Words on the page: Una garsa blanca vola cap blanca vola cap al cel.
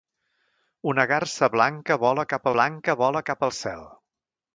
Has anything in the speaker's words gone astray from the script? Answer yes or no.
no